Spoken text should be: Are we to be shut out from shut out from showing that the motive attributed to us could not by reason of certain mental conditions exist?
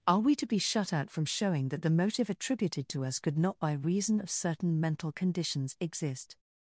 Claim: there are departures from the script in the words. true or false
true